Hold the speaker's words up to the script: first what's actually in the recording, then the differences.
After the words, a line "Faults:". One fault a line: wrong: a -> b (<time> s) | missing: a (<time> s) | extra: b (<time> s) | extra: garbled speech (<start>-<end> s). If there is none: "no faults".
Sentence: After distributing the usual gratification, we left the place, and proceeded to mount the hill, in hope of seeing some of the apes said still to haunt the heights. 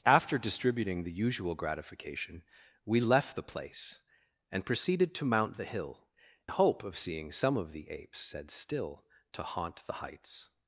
After distributing the usual gratification, we left the place, and proceeded to mount the hill, hope of seeing some of the apes said still to haunt the heights.
Faults:
missing: in (6.1 s)